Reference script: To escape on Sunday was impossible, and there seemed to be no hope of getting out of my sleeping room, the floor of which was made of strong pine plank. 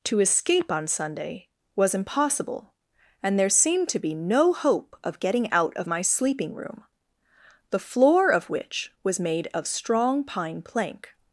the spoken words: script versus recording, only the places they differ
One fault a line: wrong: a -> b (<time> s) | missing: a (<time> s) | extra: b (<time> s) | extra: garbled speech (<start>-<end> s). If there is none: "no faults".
no faults